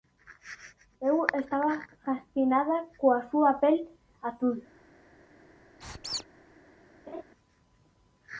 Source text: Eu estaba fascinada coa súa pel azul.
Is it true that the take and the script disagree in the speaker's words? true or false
false